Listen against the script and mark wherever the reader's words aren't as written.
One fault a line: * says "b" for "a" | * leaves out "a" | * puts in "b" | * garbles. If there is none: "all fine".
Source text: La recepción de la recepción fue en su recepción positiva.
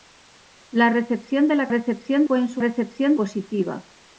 all fine